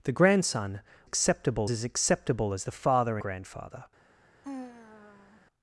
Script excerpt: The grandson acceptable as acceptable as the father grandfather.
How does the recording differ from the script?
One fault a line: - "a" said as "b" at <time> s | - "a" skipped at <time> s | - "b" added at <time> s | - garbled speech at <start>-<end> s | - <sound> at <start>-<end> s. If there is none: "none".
- sigh at 4.4-5.5 s